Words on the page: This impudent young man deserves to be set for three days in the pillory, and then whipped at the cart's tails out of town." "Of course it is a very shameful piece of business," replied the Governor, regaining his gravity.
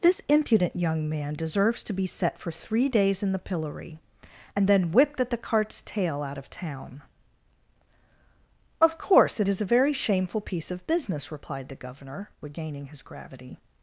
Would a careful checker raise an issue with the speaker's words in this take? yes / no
yes